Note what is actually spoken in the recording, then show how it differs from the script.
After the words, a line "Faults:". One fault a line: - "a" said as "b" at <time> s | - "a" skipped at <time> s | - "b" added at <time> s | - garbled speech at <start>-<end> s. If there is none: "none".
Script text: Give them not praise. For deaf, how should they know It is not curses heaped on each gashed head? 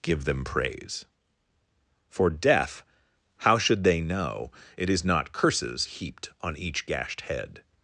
Give them praise. For deaf, how should they know It is not curses heaped on each gashed head?
Faults:
- "not" skipped at 0.4 s